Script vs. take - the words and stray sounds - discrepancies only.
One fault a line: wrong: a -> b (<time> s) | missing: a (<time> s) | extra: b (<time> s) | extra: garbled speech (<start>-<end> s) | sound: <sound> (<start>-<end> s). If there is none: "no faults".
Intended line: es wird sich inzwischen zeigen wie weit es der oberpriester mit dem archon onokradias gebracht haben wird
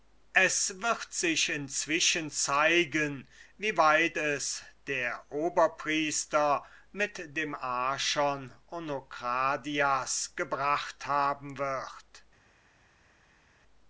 no faults